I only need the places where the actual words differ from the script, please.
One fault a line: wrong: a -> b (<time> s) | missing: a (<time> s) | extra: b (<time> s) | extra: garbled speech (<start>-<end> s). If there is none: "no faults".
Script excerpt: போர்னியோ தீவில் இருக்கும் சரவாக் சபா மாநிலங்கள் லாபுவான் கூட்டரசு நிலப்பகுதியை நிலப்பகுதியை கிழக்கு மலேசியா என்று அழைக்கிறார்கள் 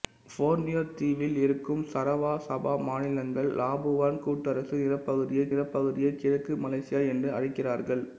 no faults